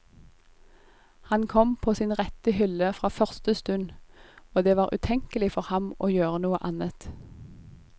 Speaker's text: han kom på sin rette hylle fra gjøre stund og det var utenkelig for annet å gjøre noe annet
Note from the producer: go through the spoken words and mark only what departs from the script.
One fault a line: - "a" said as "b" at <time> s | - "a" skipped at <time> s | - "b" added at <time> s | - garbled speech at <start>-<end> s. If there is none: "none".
- "gjøre" said as "første" at 3.1 s
- "annet" said as "ham" at 5.6 s